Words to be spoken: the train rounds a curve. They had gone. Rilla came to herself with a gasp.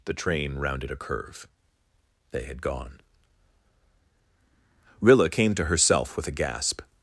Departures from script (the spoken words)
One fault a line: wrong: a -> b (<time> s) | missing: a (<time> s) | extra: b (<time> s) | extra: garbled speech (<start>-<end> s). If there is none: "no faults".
wrong: rounds -> rounded (0.6 s)